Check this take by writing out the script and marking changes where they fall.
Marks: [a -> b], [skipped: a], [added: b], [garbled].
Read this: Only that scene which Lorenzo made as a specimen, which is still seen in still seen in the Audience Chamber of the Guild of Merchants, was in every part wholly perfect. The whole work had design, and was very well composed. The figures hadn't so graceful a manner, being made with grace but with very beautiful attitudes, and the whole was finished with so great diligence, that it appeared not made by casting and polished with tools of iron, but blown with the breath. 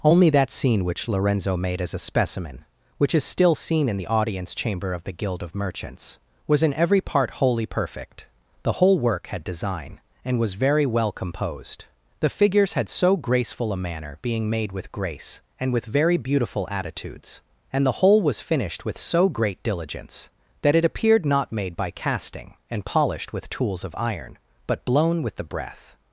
Only that scene which Lorenzo made as a specimen, which is still seen in [skipped: still seen in] the Audience Chamber of the Guild of Merchants, was in every part wholly perfect. The whole work had design, and was very well composed. The figures [hadn't -> had] so graceful a manner, being made with grace [but -> and] with very beautiful attitudes, and the whole was finished with so great diligence, that it appeared not made by casting and polished with tools of iron, but blown with the breath.